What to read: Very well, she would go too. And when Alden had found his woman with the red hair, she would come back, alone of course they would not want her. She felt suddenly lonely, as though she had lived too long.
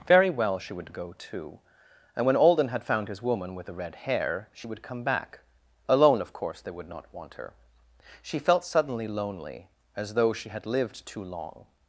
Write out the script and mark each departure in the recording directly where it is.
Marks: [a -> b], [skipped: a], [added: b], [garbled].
Very well, she would go too. And when Alden had found his woman with the red hair, she would come back, alone of course they would not want her. She felt suddenly lonely, as though she had lived too long.